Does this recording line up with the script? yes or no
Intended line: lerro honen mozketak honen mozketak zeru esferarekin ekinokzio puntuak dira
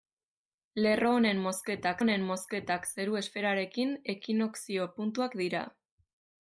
yes